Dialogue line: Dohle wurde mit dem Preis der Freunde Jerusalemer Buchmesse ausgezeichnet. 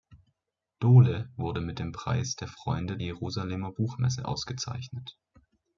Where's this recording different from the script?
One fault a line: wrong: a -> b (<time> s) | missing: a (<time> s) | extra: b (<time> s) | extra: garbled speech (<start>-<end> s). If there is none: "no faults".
no faults